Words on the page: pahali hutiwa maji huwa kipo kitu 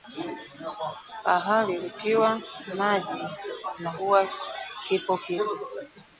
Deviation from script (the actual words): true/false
true